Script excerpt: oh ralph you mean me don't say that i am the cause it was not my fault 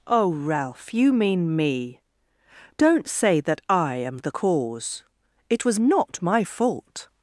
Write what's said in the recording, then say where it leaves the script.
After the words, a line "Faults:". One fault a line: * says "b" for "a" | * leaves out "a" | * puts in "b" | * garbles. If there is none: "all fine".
oh ralph you mean me don't say that i am the cause it was not my fault
Faults:
all fine